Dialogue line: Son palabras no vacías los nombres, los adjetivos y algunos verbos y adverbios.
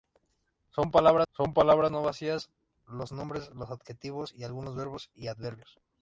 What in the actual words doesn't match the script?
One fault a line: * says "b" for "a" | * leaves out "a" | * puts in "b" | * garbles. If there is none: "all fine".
* puts in "son palabras"